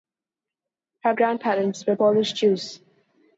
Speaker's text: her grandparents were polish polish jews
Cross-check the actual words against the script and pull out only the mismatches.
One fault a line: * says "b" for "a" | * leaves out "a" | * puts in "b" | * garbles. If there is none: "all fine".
* leaves out "polish"